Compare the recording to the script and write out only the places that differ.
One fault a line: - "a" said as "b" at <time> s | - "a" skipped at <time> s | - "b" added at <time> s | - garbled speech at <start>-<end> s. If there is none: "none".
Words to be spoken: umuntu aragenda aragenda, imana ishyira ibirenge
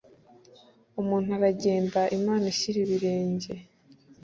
- "aragenda" skipped at 2.0 s